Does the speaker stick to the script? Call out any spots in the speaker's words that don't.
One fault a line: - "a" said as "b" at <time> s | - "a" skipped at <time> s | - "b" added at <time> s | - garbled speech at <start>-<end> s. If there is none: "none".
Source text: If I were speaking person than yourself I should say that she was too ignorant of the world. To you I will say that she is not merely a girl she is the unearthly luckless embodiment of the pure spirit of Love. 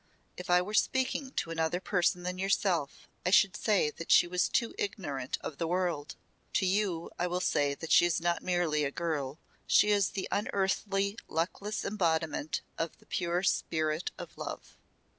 - "to another" added at 1.3 s